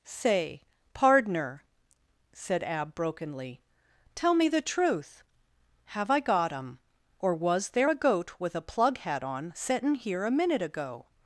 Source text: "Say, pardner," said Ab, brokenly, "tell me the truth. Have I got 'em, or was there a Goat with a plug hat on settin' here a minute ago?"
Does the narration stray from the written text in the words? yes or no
no